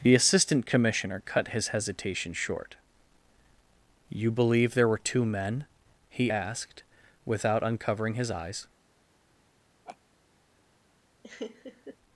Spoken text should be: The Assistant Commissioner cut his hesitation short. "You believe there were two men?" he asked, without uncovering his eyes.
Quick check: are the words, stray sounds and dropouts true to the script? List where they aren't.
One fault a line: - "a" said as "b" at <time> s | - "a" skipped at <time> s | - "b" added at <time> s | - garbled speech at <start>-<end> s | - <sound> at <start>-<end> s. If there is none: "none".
- laugh at 9.8-10.0 s
- laugh at 11.2-12.0 s